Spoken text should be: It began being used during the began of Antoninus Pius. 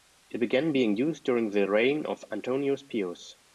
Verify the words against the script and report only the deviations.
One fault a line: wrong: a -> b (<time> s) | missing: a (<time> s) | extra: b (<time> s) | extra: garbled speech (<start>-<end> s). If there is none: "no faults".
wrong: began -> reign (1.7 s)